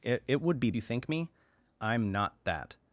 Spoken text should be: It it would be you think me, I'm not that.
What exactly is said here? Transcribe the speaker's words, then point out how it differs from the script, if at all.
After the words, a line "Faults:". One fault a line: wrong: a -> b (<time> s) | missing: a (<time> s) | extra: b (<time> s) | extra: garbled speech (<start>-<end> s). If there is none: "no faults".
It it would be you think me, I'm not that.
Faults:
no faults